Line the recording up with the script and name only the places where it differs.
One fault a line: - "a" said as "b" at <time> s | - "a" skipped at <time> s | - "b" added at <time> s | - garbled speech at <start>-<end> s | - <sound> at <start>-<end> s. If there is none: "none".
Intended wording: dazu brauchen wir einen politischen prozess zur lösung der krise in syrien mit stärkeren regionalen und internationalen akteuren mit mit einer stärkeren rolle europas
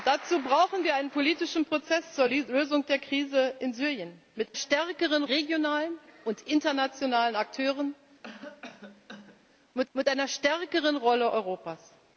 - cough at 8.2-9.5 s